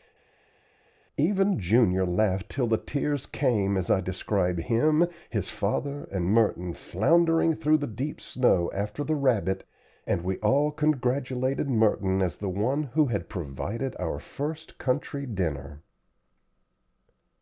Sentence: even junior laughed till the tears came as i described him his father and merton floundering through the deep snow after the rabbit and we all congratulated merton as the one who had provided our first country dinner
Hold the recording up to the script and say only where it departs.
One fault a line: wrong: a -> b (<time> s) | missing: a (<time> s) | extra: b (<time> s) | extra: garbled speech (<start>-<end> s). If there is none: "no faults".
no faults